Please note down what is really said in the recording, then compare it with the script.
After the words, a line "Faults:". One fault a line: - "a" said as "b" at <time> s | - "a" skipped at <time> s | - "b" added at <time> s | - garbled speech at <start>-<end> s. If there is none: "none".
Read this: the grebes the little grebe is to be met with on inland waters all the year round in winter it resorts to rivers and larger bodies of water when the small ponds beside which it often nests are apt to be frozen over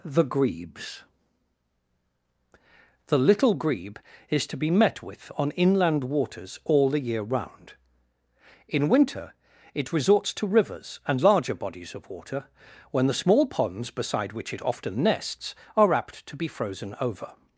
the grebes the little grebe is to be met with on inland waters all the year round in winter it resorts to rivers and larger bodies of water when the small ponds beside which it often nests are apt to be frozen over
Faults:
none